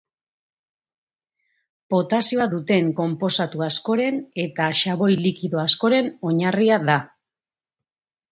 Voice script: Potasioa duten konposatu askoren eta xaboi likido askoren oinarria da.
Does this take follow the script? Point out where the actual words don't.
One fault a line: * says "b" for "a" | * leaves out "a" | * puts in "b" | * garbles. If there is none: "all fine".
all fine